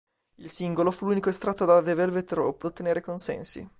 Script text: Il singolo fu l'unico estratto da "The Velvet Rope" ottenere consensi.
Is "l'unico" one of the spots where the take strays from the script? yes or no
no